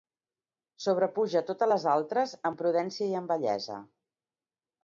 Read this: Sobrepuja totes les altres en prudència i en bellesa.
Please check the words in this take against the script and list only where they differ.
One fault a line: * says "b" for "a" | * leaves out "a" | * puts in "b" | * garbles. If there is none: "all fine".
all fine